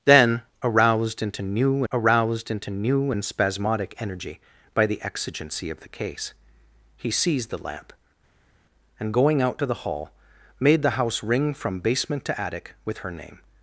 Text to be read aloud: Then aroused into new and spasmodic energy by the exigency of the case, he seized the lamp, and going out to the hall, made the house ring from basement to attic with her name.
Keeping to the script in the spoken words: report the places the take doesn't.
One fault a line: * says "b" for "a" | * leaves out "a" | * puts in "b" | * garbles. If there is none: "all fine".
* puts in "aroused into new"